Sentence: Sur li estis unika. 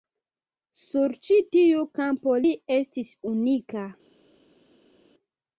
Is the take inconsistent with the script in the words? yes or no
yes